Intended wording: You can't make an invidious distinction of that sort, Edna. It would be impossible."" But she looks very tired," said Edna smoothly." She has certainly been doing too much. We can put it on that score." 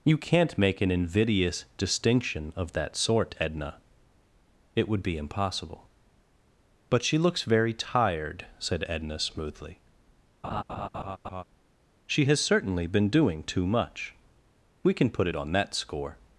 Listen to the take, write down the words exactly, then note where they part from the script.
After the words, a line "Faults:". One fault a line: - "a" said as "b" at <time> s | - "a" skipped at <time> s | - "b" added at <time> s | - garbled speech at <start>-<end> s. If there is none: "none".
You can't make an invidious distinction of that sort, Edna. It would be impossible."" But she looks very tired," said Edna smoothly." She has certainly been doing too much. We can put it on that score."
Faults:
none